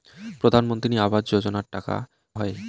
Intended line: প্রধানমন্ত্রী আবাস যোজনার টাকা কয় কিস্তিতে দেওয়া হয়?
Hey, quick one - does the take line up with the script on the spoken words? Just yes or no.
no